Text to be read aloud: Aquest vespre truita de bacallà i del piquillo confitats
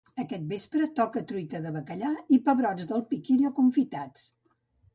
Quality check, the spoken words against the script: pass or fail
fail